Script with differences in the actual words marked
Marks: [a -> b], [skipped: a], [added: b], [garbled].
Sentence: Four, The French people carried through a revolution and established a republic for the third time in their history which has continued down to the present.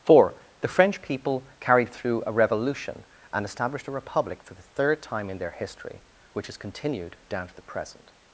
Four, The French people carried through a revolution and established a republic for the third time in their history which has continued down to the present.